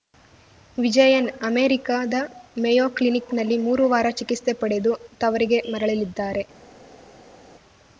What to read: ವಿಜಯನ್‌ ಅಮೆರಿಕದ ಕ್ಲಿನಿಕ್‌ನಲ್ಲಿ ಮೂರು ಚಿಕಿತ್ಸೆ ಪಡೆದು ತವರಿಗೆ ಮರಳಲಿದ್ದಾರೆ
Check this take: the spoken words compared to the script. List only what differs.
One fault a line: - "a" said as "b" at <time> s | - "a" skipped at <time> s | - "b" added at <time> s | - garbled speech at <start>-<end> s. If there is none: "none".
- "ಮೇಯೋ" added at 2.6 s
- "ವಾರ" added at 3.9 s